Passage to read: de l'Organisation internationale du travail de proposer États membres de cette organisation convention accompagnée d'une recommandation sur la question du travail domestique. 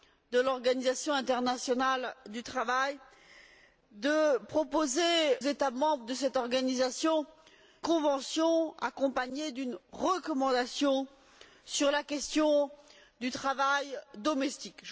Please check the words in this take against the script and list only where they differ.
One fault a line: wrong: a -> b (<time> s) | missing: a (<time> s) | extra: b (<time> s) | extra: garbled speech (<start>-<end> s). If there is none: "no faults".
no faults